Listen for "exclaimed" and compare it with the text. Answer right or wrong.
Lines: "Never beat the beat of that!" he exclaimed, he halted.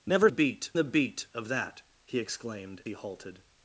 right